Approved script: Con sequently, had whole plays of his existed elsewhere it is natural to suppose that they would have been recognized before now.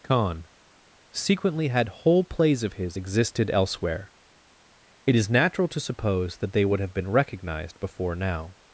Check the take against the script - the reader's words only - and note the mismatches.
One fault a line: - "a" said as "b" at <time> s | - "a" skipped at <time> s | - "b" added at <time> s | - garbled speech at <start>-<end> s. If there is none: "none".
none